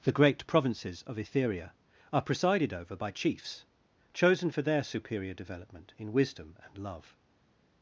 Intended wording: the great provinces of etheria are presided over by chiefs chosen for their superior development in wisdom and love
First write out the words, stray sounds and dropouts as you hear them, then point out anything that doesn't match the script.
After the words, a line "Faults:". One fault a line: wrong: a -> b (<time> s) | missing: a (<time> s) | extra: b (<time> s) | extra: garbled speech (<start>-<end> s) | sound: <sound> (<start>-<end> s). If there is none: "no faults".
the great provinces of etheria are presided over by chiefs chosen for their superior development in wisdom and love
Faults:
no faults